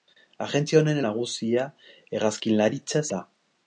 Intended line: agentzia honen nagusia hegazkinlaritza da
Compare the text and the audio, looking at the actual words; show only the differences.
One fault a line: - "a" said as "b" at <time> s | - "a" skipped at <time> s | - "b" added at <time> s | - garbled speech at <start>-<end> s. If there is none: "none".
none